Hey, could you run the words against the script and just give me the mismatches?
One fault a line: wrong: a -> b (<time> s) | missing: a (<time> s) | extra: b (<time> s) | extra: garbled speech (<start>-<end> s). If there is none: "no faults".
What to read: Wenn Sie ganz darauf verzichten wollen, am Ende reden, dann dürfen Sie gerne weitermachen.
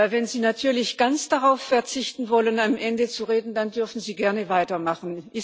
extra: natürlich (0.4 s)
extra: zu (3.1 s)